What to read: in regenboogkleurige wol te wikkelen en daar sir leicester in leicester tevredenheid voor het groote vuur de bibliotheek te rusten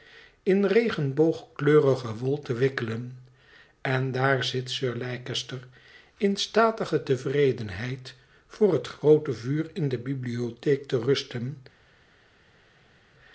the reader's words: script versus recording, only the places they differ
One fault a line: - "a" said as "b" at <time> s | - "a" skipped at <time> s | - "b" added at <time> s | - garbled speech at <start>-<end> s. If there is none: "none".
- "zit" added at 4.4 s
- "leicester" said as "statige" at 6.4 s
- "in" added at 9.7 s